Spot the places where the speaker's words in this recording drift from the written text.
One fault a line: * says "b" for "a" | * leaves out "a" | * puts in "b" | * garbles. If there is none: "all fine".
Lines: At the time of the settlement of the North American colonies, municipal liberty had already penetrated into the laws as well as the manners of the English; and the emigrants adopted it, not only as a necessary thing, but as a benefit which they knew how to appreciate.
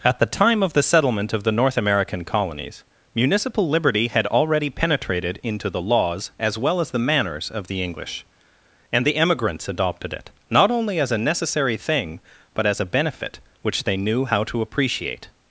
all fine